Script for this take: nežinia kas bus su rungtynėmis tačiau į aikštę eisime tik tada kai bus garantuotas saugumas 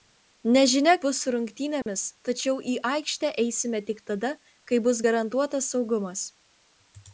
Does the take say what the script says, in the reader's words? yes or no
no